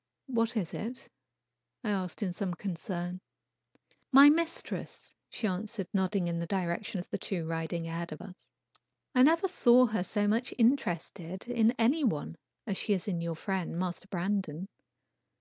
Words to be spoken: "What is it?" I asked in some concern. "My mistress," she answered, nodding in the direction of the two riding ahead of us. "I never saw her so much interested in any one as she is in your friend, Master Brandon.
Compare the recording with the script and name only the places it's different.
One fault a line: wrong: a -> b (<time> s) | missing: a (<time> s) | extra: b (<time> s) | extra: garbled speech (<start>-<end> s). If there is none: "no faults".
no faults